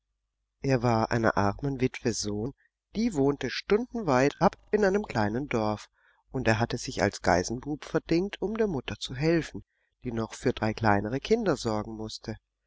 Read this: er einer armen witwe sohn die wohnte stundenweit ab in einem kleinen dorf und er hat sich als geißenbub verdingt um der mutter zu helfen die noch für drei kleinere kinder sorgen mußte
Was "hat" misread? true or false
true